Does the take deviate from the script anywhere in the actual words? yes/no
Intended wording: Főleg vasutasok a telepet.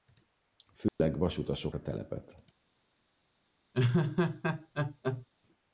no